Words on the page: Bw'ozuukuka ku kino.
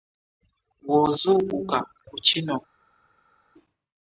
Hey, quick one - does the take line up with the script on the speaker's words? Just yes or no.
yes